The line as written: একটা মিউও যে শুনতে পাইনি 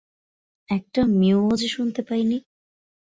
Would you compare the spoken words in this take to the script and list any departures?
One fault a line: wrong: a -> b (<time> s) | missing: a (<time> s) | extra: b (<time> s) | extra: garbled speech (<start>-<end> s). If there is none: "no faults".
no faults